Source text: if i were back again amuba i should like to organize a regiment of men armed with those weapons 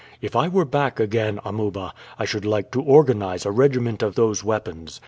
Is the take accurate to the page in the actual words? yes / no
no